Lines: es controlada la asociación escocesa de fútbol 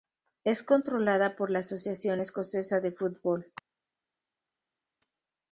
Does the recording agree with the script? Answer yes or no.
no